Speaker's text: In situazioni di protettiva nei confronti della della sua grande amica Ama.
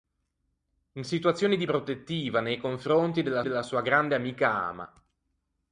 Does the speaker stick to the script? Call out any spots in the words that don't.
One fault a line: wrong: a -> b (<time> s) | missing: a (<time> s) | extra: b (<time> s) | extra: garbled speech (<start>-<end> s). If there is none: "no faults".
no faults